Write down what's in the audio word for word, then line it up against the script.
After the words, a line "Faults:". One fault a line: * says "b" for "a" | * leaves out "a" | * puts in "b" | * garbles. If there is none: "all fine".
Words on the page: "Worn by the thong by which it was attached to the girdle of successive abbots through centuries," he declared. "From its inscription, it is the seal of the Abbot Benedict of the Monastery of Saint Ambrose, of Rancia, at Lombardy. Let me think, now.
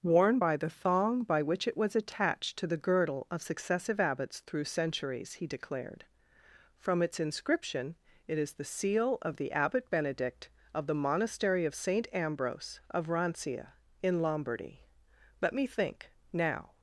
"Worn by the thong by which it was attached to the girdle of successive abbots through centuries," he declared. "From its inscription, it is the seal of the Abbot Benedict of the Monastery of Saint Ambrose, of Rancia, in Lombardy. Let me think, now.
Faults:
* says "in" for "at"